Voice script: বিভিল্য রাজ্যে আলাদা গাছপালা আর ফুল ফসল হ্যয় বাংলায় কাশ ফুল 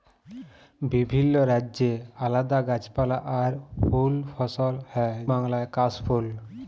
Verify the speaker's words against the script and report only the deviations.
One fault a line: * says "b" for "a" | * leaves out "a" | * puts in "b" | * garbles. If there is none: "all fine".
all fine